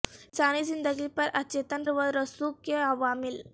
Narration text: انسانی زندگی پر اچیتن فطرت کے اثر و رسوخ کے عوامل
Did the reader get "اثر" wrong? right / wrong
wrong